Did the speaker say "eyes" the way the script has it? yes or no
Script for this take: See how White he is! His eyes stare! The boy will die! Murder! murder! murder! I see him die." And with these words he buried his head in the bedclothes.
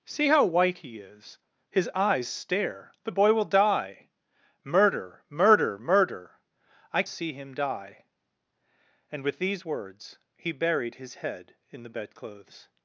yes